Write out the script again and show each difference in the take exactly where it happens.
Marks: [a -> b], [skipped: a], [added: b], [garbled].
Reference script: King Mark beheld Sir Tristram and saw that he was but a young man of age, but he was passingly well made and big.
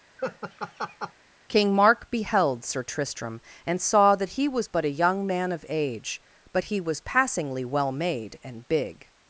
King Mark beheld Sir Tristram and saw that he was but a young man of age, but he was passingly well made and big.